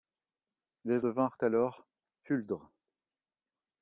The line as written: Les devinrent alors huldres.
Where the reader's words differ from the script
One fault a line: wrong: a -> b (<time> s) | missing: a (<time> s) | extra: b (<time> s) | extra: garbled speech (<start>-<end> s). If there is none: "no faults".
no faults